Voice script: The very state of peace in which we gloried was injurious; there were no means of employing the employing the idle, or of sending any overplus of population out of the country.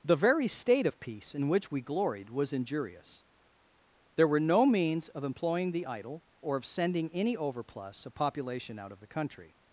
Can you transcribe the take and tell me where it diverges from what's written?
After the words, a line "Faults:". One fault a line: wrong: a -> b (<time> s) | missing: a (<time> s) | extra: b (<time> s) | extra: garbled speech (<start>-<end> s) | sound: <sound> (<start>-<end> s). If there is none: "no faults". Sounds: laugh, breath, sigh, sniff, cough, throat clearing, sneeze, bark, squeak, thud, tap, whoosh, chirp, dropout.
The very state of peace in which we gloried was injurious; there were no means of employing the idle, or of sending any overplus of population out of the country.
Faults:
missing: employing the (5.9 s)